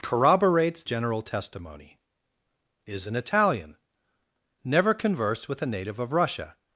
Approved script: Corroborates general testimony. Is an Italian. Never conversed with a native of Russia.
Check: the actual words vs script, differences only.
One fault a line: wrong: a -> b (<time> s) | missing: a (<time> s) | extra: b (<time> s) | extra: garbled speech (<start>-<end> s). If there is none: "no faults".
no faults